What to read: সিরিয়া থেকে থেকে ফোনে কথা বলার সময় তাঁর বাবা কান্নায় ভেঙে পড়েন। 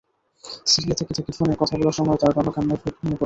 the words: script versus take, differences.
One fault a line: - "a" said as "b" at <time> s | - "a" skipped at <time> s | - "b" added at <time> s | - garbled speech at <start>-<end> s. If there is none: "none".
none